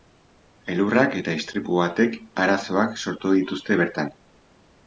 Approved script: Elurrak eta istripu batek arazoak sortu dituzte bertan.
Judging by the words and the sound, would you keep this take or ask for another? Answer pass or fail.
pass